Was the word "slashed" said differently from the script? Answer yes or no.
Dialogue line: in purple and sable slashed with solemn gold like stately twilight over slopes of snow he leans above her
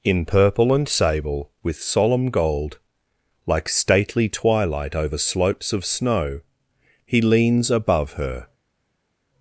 yes